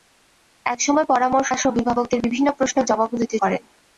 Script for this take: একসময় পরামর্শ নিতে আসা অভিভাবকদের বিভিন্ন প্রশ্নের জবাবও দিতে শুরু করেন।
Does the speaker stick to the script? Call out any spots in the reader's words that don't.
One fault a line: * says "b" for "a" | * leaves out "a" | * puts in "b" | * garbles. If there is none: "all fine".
* leaves out "নিতে"
* leaves out "শুরু"